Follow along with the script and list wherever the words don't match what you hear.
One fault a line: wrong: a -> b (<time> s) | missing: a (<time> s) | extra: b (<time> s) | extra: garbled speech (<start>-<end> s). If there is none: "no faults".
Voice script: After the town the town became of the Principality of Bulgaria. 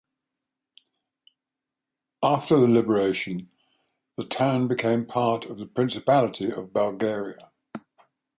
wrong: town -> liberation (2.7 s)
extra: part (5.0 s)